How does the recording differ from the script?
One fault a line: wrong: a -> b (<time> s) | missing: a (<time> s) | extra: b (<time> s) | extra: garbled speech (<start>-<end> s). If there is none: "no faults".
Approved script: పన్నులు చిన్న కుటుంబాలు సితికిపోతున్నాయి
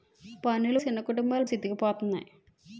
no faults